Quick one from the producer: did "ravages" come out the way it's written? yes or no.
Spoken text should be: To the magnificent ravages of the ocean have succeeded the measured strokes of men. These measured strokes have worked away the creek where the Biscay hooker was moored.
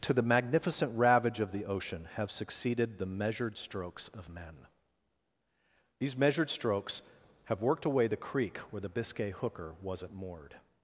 no